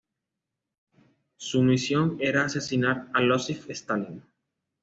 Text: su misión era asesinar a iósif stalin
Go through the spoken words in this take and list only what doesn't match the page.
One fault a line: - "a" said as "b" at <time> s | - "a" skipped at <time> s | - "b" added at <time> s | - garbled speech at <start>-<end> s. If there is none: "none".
none